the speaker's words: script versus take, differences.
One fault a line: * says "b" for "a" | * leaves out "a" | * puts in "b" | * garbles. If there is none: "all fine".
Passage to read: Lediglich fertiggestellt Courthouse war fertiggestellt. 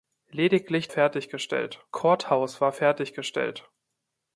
all fine